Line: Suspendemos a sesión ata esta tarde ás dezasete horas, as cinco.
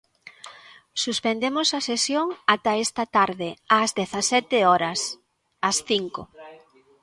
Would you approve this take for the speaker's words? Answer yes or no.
yes